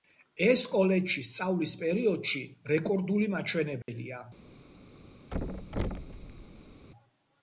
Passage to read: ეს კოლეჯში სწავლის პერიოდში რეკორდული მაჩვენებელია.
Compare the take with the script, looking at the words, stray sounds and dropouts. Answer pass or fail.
fail